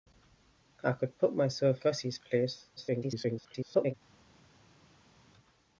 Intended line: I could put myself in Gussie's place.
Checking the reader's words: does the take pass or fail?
fail